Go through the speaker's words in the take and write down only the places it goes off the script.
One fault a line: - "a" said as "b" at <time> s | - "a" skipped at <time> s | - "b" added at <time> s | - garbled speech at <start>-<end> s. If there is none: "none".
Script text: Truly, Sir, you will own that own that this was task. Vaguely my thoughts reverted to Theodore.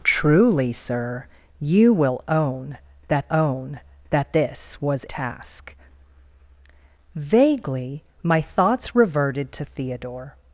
none